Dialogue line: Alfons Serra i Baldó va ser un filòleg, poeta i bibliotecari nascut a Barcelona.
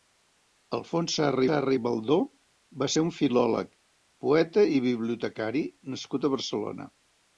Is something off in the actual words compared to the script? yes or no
yes